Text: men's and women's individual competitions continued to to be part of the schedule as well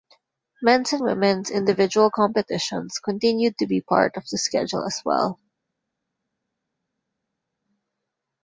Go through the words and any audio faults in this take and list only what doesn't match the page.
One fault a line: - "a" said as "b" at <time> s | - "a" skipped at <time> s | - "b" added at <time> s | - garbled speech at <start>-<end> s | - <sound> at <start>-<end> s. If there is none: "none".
- "to" skipped at 3.7 s